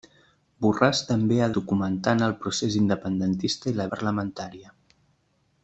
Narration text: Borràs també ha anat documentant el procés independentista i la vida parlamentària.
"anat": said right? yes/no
no